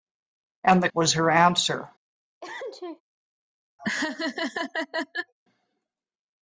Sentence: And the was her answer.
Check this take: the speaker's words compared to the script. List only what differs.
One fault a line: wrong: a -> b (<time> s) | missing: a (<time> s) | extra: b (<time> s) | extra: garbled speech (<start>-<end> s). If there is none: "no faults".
no faults